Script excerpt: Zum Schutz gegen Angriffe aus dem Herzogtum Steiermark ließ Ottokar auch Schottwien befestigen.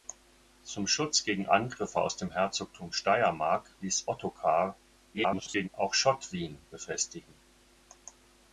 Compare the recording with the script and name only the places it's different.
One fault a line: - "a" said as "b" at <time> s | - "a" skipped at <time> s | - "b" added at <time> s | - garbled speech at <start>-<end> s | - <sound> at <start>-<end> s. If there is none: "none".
- garbled speech at 5.1-5.7 s